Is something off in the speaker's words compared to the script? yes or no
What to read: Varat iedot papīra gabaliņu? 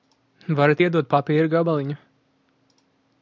no